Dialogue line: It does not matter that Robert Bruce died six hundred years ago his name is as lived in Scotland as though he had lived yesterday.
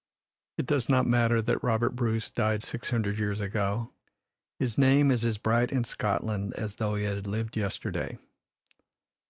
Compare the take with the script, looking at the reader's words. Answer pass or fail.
fail